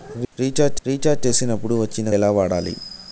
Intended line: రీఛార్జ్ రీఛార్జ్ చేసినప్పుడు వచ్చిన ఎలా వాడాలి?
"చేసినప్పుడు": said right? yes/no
yes